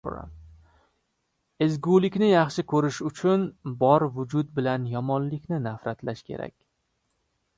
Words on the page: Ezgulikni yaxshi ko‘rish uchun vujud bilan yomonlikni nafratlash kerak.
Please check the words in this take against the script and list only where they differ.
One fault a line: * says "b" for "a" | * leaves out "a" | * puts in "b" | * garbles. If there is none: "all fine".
* puts in "bor"